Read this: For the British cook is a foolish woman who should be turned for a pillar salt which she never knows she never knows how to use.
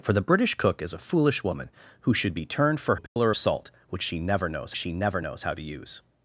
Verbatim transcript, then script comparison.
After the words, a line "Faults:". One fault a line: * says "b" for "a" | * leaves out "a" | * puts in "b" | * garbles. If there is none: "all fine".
For the British cook is a foolish woman who should be turned for a pillar salt which she never knows she never knows how to use.
Faults:
all fine